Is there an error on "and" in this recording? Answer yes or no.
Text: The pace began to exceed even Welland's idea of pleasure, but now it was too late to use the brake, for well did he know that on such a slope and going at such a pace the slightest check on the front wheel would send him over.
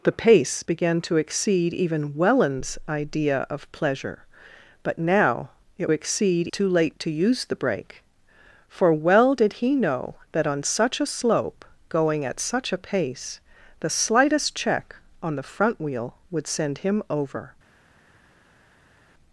yes